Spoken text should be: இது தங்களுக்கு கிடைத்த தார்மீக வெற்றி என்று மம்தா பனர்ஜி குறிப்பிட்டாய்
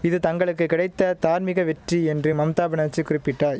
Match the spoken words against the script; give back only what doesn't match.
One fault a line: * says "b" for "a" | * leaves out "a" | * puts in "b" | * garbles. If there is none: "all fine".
all fine